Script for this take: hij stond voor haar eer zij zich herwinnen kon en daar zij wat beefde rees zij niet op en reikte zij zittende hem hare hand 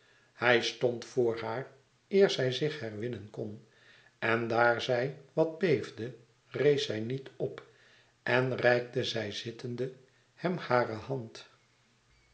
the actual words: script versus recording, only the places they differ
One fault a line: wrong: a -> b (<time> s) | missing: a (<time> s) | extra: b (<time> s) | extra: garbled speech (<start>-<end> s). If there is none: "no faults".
no faults